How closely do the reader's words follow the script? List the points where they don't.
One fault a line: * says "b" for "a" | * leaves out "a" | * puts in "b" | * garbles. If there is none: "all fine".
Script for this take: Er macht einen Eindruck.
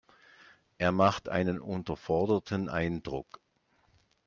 * puts in "unterforderten"